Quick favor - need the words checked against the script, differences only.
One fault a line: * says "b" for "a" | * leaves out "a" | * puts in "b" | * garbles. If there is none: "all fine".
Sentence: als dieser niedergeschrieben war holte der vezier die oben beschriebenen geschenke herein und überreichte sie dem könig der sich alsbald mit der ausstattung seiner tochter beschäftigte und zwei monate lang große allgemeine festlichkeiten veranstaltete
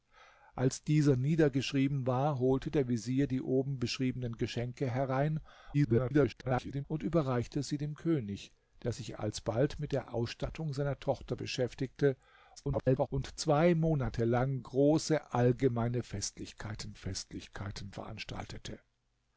* garbles
* garbles
* puts in "festlichkeiten"